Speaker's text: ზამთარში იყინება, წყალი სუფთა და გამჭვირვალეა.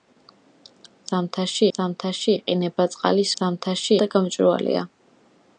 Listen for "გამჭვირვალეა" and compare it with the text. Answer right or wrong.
right